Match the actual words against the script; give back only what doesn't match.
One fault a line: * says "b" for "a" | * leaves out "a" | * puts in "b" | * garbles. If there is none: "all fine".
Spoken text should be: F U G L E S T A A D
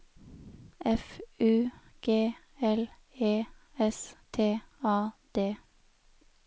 * leaves out "A"